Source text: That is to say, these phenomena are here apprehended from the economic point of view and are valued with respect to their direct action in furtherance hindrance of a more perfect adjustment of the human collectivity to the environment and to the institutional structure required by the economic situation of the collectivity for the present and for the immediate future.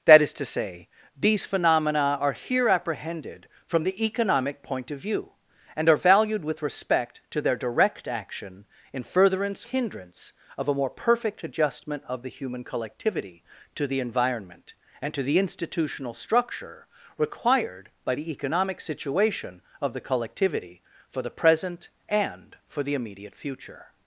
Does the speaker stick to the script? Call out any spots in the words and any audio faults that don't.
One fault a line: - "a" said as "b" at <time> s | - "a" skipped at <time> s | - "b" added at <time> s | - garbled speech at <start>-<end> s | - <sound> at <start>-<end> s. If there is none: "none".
none